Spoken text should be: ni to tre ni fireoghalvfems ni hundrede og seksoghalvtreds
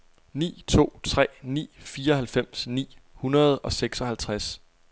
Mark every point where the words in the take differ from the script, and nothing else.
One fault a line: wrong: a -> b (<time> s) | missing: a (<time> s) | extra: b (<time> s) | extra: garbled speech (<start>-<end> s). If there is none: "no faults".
no faults